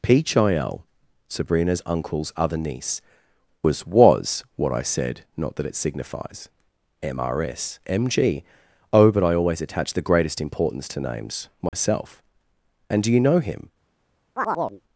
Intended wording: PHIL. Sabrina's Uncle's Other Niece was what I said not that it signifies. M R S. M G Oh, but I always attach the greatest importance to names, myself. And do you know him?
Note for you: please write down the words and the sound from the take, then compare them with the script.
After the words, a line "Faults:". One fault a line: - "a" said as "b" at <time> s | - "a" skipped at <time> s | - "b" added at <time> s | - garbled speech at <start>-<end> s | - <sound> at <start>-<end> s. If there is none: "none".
PHIL. Sabrina's Uncle's Other Niece was was what I said not that it signifies. M R S. M G Oh, but I always attach the greatest importance to names, myself. And do you know him?
Faults:
- "was" added at 3.9 s
- dropout at 11.7-11.7 s
- chirp at 14.4-14.8 s